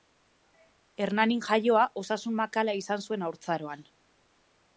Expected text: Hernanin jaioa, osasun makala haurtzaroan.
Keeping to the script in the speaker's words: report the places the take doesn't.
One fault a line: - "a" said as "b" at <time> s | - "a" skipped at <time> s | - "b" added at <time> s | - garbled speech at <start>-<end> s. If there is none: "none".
- "izan zuen" added at 2.8 s